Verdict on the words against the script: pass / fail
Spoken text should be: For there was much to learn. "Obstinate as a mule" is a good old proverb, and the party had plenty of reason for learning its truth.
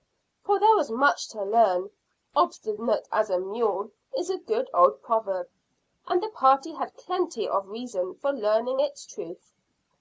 pass